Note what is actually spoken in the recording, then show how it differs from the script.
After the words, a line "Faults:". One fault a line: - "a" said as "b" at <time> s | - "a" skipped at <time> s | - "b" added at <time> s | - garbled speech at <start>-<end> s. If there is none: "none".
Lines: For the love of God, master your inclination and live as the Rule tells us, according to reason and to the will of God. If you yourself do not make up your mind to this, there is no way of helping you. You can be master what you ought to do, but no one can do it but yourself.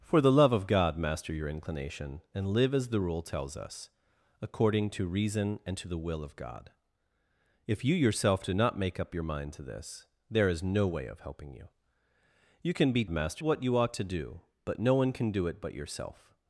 For the love of God, master your inclination and live as the Rule tells us, according to reason and to the will of God. If you yourself do not make up your mind to this, there is no way of helping you. You can be master what you ought to do, but no one can do it but yourself.
Faults:
none